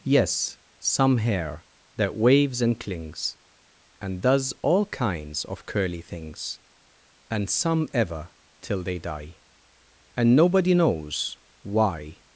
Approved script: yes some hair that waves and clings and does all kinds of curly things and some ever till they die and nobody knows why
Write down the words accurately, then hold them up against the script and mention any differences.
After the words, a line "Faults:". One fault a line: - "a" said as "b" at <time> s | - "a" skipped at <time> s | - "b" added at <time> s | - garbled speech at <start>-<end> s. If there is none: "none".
yes some hair that waves and clings and does all kinds of curly things and some ever till they die and nobody knows why
Faults:
none